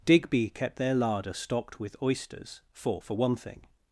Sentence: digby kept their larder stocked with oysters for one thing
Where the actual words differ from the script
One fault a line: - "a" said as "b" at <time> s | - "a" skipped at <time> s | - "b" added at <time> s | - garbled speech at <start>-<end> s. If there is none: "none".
- "for" added at 3.0 s